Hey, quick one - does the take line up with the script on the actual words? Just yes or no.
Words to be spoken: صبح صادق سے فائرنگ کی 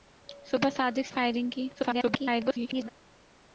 no